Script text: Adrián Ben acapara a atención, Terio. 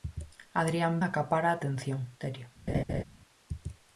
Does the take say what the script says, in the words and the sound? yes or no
no